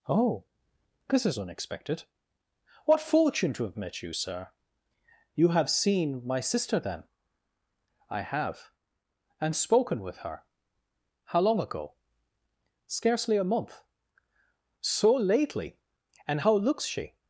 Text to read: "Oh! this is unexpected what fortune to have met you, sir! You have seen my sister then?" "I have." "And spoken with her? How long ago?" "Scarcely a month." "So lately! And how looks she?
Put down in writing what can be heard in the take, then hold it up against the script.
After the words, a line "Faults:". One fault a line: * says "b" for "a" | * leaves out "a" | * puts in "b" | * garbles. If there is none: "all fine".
"Oh! this is unexpected what fortune to have met you, sir! You have seen my sister then?" "I have." "And spoken with her? How long ago?" "Scarcely a month." "So lately! And how looks she?
Faults:
all fine